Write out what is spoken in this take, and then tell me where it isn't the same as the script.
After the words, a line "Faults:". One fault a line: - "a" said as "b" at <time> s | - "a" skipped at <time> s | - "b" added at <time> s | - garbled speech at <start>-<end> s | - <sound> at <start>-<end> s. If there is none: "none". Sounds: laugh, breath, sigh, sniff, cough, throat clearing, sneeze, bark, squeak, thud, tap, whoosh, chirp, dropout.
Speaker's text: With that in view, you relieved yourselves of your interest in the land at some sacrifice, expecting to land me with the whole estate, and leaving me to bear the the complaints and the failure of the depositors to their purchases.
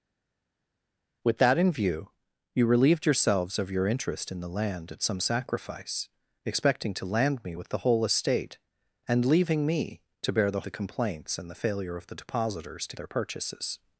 With that in view, you relieved yourselves of your interest in the land at some sacrifice, expecting to land me with the whole estate, and leaving me to bear the the complaints and the failure of the depositors to their purchases.
Faults:
none